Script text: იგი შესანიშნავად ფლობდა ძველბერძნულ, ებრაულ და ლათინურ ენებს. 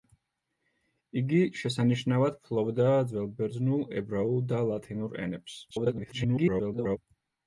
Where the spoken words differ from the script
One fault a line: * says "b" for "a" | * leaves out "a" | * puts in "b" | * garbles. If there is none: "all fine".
* garbles